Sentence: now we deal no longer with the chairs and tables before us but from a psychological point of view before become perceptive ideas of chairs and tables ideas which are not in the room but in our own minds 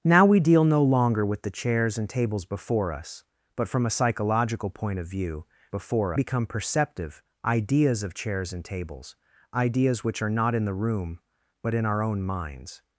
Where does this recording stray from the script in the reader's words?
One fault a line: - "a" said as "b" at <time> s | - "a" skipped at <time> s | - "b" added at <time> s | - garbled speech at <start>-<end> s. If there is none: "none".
none